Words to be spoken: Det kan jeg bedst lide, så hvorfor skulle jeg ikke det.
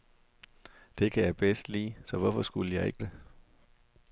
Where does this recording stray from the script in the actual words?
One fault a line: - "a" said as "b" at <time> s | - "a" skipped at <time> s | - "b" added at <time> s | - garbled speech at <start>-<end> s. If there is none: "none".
none